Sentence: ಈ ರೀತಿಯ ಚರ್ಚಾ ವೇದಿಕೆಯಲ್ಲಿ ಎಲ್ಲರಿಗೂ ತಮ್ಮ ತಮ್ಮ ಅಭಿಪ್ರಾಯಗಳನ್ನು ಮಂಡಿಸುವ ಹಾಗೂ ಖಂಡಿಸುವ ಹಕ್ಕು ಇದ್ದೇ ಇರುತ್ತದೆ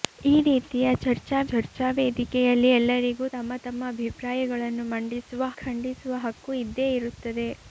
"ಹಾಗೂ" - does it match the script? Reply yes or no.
no